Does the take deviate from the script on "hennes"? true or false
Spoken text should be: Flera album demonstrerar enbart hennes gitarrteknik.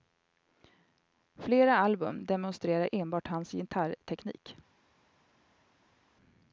true